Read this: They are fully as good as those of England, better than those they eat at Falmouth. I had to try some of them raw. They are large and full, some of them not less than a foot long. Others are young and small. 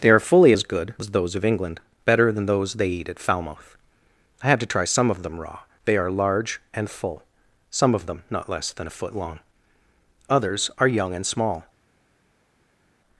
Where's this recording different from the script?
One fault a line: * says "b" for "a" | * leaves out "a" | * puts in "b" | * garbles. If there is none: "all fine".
all fine